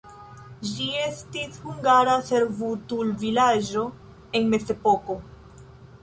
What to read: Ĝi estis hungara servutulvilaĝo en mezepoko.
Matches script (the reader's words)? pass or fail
pass